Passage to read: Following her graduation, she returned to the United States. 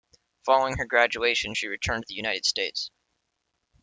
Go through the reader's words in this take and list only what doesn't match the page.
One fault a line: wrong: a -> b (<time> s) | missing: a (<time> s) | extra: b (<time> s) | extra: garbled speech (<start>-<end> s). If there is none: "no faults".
no faults